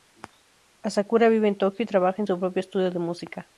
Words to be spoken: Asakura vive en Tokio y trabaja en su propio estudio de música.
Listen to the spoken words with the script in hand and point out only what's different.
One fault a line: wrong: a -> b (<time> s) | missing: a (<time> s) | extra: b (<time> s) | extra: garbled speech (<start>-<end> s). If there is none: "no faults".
no faults